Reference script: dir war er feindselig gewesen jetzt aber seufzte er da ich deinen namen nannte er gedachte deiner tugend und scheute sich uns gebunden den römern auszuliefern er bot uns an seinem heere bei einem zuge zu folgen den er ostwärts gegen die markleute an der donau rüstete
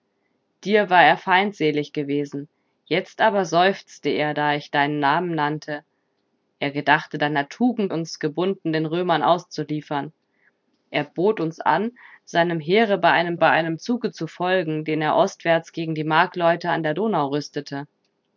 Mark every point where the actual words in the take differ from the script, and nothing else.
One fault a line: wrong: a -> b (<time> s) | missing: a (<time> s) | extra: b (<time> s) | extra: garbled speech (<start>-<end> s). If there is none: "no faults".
missing: und scheute sich (7.9 s)
extra: bei einem (13.3 s)